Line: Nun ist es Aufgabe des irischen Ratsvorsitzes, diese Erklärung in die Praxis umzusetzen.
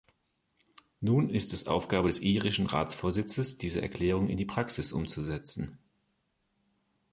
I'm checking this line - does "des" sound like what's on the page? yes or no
yes